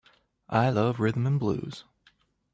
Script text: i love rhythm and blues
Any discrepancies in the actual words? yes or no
no